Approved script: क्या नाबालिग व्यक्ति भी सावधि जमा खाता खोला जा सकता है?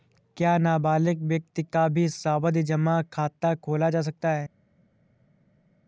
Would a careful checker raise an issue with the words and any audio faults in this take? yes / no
yes